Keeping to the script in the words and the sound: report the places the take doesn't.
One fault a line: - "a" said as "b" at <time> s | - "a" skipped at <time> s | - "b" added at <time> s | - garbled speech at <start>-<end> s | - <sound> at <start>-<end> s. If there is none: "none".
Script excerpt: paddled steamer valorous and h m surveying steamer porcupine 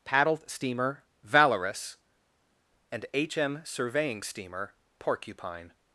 none